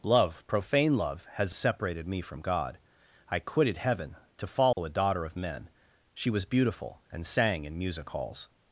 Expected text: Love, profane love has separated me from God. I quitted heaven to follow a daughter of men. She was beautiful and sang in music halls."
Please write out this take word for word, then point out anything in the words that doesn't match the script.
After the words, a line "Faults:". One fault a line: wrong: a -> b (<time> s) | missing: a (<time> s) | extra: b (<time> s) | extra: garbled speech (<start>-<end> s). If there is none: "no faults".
Love, profane love has separated me from God. I quitted heaven to follow a daughter of men. She was beautiful and sang in music halls."
Faults:
no faults